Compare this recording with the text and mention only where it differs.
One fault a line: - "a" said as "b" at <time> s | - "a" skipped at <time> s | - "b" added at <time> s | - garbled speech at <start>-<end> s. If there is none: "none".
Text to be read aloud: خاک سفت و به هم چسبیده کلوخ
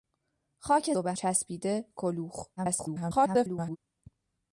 - "سفت" skipped at 0.9 s
- "هم" skipped at 1.1 s
- garbled speech at 2.6-3.8 s